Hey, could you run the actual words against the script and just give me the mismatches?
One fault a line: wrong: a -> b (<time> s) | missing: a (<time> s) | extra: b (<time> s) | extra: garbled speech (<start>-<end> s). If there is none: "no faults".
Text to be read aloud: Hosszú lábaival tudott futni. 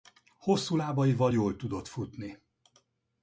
extra: jól (1.3 s)